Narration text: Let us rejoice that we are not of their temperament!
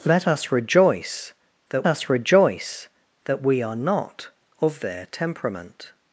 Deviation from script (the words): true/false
true